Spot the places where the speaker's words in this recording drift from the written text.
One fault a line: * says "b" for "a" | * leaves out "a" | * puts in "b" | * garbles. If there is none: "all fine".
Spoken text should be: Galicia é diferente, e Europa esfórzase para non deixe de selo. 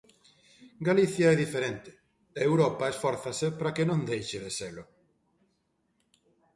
* puts in "que"